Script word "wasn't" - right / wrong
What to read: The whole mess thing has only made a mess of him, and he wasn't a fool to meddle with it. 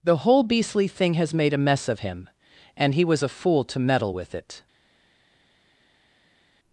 wrong